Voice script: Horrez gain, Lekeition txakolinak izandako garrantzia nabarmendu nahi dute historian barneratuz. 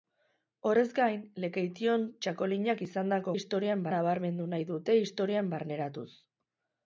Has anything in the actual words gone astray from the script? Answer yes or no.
yes